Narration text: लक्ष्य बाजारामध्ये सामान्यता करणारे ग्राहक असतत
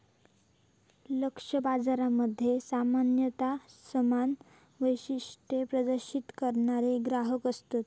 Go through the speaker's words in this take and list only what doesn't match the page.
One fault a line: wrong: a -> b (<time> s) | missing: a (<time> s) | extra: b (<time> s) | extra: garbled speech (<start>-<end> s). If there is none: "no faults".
extra: समान वैशिष्ट्ये प्रदर्शित (3.9 s)